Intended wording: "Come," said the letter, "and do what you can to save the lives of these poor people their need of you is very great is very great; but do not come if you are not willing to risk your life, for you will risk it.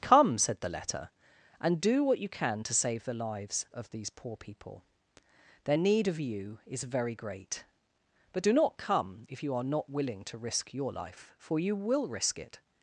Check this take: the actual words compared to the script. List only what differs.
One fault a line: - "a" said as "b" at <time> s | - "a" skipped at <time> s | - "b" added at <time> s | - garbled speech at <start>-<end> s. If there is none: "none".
- "is very great" skipped at 7.6 s